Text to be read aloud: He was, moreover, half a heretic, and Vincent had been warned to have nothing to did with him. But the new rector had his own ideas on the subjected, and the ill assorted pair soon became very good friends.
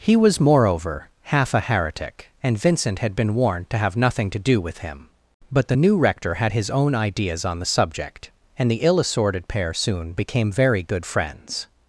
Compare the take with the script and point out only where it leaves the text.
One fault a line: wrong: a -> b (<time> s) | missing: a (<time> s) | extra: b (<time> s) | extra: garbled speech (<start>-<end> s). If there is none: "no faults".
wrong: did -> do (4.4 s)
wrong: subjected -> subject (7.6 s)